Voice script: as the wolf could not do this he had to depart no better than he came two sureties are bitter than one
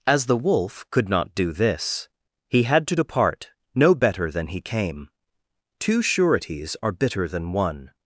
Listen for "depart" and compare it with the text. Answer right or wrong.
right